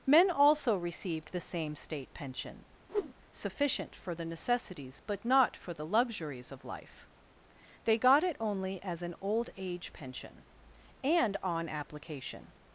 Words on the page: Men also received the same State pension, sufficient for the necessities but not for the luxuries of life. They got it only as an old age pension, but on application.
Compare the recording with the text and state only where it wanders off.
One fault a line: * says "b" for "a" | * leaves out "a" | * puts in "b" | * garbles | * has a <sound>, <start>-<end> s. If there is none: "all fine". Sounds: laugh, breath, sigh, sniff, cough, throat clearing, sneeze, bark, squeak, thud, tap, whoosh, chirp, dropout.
* has a whoosh, 2.9-3.1 s
* says "and" for "but"